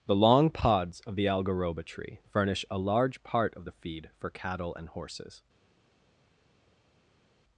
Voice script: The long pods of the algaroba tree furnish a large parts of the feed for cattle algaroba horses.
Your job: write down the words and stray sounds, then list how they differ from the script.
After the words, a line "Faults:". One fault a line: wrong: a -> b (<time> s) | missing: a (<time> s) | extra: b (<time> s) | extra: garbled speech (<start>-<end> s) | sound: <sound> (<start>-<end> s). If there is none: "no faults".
The long pods of the algaroba tree furnish a large part of the feed for cattle and horses.
Faults:
wrong: parts -> part (3.2 s)
wrong: algaroba -> and (4.8 s)